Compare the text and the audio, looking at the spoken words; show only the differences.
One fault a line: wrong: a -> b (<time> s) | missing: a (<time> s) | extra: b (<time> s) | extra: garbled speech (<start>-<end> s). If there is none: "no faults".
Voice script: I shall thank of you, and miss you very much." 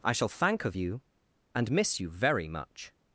no faults